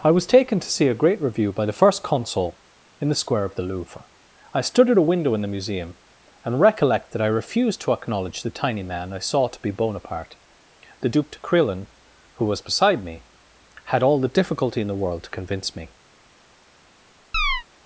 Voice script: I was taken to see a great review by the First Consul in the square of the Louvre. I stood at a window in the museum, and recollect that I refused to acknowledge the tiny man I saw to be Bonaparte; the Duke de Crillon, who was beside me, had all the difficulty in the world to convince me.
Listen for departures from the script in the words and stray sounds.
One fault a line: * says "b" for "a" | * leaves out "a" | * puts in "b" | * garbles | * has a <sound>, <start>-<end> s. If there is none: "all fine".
* has a chirp, 17.3-17.6 s